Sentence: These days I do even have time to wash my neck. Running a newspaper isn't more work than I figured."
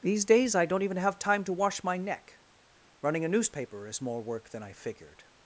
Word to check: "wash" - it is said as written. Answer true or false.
true